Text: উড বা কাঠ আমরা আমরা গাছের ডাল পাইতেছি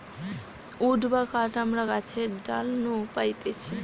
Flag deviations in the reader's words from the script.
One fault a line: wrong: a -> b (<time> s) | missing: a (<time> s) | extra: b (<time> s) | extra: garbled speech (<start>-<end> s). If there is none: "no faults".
missing: আমরা (1.8 s)
extra: নু (2.8 s)